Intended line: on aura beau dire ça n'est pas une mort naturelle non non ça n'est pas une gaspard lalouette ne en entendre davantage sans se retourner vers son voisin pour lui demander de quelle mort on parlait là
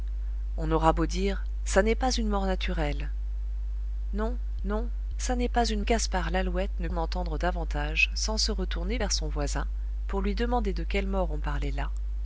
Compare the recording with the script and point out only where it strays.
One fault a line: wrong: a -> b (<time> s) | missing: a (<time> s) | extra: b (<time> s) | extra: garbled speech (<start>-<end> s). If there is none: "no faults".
no faults